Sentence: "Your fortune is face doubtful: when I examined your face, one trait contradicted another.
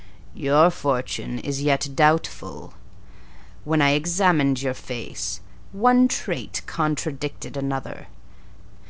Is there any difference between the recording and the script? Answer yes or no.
yes